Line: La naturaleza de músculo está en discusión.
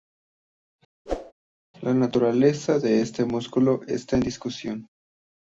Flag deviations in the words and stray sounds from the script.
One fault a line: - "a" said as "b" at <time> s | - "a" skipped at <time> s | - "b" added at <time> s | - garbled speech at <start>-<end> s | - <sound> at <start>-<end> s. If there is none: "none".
- whoosh at 1.1-1.3 s
- "este" added at 3.0 s